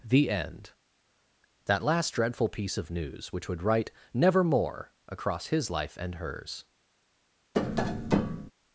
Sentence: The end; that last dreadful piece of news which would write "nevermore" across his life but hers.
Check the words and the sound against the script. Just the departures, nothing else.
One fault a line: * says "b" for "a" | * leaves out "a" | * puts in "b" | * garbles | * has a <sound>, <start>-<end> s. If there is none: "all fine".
* says "and" for "but"
* has a tap, 7.5-8.5 s